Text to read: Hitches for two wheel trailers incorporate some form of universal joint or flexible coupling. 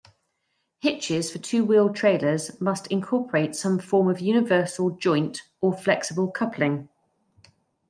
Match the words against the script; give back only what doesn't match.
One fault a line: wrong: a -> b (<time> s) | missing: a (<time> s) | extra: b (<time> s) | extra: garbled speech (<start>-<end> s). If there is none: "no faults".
extra: must (2.6 s)